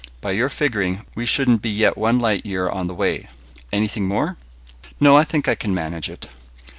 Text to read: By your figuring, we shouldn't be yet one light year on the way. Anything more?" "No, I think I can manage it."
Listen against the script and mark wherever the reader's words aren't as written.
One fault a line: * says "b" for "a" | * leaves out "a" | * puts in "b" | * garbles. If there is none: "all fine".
all fine